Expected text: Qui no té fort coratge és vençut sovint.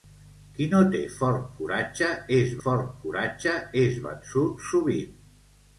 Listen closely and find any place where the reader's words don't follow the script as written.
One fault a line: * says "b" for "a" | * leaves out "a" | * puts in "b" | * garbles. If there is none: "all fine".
* puts in "fort coratge és"